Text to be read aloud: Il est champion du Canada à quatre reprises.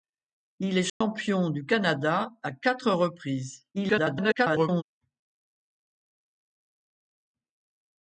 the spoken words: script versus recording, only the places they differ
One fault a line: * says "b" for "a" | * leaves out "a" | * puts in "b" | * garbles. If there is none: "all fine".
* garbles